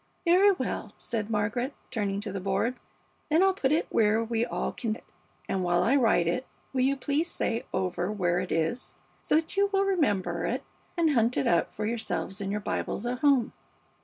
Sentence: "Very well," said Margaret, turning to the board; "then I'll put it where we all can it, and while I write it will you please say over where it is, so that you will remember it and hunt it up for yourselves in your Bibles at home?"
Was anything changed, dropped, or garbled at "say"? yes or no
no